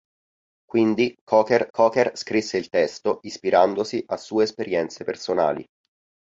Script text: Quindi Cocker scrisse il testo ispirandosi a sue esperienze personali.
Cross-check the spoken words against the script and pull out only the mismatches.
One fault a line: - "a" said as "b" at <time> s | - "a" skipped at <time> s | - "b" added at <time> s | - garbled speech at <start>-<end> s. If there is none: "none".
- "Cocker" added at 1.7 s